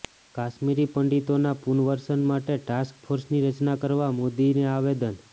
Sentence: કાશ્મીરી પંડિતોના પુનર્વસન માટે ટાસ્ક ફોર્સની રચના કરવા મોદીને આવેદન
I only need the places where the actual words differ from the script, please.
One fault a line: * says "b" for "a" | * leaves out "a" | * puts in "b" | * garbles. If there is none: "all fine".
all fine